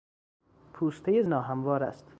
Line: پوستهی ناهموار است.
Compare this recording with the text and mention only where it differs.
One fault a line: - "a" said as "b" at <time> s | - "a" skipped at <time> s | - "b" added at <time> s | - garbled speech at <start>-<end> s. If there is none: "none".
none